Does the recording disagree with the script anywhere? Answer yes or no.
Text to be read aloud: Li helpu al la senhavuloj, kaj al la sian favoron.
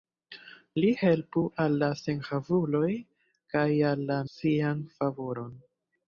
no